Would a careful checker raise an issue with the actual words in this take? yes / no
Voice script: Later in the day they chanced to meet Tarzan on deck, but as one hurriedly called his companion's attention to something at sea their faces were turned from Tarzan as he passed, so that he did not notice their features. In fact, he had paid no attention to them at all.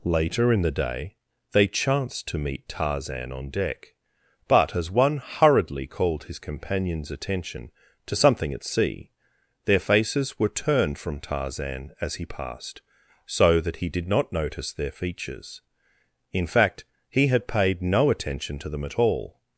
no